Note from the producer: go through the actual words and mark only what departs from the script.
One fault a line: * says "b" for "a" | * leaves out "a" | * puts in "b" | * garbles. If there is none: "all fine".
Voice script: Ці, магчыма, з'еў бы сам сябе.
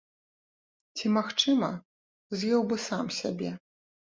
all fine